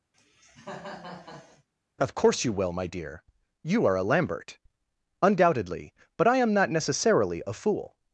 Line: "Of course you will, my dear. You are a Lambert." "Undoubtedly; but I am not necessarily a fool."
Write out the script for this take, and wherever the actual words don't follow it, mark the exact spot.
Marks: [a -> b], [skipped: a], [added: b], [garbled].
"Of course you will, my dear. You are a Lambert." "Undoubtedly; but I am not necessarily a fool."